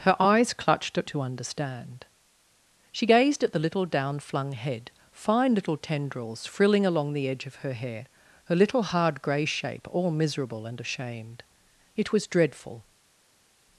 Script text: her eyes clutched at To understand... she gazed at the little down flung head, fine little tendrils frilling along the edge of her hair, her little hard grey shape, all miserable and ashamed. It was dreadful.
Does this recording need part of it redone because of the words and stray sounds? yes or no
no